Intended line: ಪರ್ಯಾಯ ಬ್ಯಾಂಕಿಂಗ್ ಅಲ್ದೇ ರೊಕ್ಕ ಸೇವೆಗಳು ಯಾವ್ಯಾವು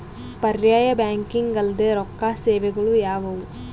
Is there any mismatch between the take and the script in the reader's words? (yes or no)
no